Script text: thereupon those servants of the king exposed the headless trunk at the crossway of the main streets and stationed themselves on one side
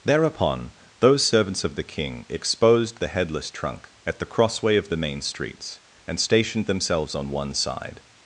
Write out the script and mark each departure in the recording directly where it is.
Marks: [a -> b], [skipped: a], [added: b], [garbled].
thereupon those servants of the king exposed the headless trunk at the crossway of the main streets and stationed themselves on one side